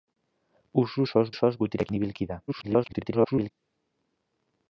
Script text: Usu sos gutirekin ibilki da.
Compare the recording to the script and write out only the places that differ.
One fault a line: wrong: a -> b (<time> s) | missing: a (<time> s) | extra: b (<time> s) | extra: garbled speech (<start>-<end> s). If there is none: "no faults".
extra: sos (1.4 s)
extra: garbled speech (2.5-3.5 s)